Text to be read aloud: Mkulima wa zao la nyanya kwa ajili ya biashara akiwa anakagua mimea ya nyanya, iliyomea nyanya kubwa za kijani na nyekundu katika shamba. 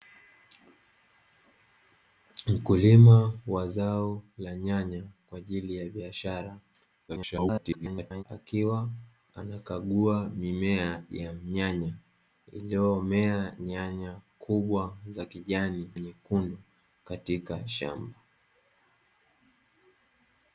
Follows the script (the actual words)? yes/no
no